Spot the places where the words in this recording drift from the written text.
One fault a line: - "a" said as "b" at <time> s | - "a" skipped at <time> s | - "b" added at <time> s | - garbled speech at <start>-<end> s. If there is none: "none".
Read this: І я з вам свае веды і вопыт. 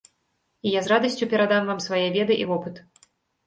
- "радасцю перадам" added at 0.9 s